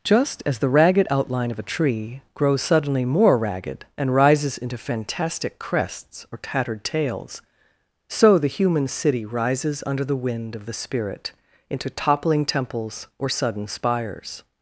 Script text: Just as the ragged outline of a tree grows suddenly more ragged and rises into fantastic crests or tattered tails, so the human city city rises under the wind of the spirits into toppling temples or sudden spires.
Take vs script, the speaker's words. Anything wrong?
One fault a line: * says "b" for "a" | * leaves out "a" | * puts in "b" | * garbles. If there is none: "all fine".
* leaves out "city"
* says "spirit" for "spirits"